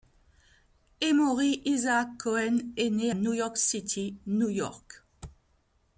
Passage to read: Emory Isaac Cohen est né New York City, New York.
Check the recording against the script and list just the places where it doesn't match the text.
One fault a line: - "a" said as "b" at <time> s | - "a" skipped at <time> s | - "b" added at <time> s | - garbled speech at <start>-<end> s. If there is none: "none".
none